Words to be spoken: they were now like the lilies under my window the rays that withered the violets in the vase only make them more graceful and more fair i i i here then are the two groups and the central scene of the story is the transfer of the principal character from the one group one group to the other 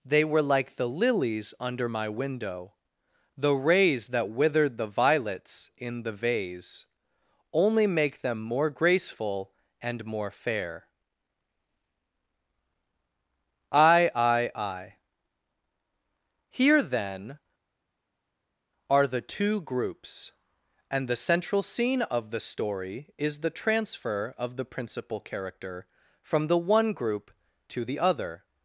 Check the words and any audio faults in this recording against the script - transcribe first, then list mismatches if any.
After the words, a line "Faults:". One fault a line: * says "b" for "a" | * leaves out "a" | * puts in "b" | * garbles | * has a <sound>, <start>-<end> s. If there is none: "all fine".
they were like the lilies under my window the rays that withered the violets in the vase only make them more graceful and more fair i i i here then are the two groups and the central scene of the story is the transfer of the principal character from the one group to the other
Faults:
* leaves out "now"
* leaves out "one group"